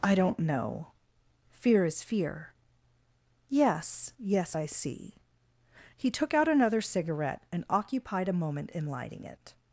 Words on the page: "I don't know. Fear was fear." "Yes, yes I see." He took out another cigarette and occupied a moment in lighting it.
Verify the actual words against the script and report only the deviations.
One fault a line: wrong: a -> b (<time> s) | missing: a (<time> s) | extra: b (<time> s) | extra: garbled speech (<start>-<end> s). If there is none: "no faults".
wrong: was -> is (1.9 s)